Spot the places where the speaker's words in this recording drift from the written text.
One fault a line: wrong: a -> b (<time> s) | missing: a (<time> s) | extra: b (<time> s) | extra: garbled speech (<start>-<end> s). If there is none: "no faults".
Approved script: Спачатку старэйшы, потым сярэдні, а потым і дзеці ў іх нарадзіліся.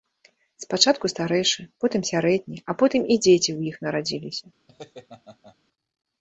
no faults